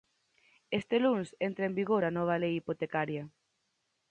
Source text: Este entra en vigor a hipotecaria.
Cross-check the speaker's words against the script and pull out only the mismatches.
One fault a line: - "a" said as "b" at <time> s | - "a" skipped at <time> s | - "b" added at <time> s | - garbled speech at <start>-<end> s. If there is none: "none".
- "luns" added at 1.0 s
- "nova Lei" added at 2.2 s